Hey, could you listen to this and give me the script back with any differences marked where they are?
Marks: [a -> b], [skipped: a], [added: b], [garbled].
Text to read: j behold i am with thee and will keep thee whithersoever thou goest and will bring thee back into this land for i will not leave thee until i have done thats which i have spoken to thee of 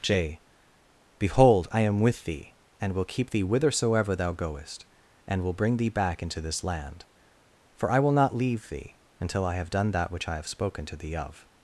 j behold i am with thee and will keep thee whithersoever thou goest and will bring thee back into this land for i will not leave thee until i have done [thats -> that] which i have spoken to thee of